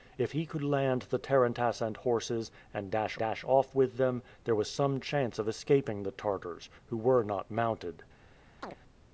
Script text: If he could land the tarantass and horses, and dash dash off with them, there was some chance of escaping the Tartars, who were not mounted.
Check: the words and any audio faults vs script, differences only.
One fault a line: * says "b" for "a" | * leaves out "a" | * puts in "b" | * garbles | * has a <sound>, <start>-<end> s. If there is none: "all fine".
* has a chirp, 8.6-8.8 s